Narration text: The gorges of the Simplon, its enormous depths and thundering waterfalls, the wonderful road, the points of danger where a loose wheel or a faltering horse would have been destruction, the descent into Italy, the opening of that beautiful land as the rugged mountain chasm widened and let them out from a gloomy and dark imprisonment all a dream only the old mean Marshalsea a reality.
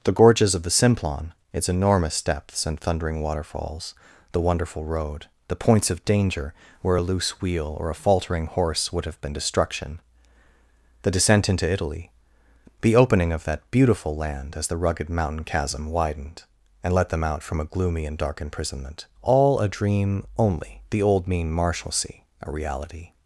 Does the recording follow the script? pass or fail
pass